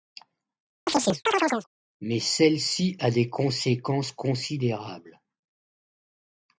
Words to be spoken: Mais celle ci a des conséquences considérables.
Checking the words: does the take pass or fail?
pass